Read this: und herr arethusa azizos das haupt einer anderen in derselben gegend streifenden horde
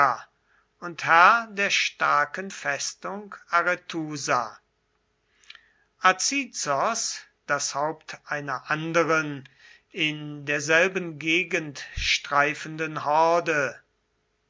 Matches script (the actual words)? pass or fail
fail